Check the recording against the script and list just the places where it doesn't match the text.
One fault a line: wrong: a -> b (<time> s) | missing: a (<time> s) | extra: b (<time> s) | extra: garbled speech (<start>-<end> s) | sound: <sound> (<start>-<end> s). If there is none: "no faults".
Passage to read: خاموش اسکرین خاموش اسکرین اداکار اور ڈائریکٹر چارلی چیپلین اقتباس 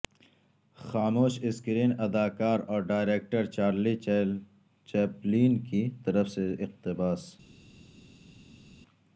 missing: خاموش اسکرین (1.9 s)
extra: کی طرف سے (5.6 s)